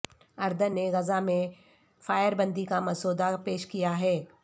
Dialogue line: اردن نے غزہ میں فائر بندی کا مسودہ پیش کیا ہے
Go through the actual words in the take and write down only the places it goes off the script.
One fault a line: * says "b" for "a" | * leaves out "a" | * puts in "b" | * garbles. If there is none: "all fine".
all fine